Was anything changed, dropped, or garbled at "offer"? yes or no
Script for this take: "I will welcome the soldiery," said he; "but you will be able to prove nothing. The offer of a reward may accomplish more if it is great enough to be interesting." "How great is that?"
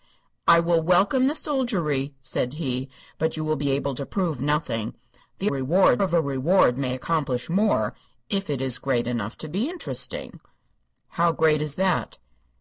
yes